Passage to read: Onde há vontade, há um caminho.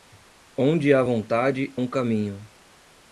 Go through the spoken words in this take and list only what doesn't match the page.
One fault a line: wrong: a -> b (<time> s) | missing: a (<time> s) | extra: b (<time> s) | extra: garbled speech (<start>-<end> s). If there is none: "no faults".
missing: há (1.7 s)